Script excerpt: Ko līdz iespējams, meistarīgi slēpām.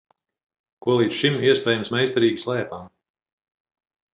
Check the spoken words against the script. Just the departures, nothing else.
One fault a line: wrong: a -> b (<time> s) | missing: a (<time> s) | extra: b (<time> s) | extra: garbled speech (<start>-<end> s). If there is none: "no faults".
extra: šim (1.2 s)